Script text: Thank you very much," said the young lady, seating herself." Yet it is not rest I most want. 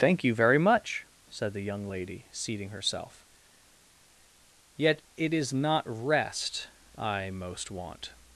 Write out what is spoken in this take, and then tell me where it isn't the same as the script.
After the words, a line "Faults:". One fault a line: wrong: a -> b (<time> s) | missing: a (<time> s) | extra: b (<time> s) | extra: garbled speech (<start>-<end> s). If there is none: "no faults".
Thank you very much," said the young lady, seating herself." Yet it is not rest I most want.
Faults:
no faults